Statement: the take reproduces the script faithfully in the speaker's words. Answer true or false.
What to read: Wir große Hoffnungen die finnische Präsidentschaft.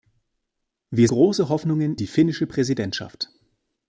true